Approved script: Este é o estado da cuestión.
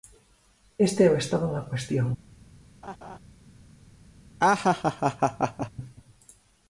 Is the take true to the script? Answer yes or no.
yes